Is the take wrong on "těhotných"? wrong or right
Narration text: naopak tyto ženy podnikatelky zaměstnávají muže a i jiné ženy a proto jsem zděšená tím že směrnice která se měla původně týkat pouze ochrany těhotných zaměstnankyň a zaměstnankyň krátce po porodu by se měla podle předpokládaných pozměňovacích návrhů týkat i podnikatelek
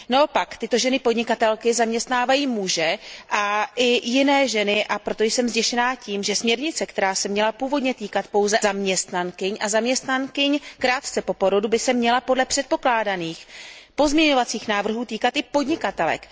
wrong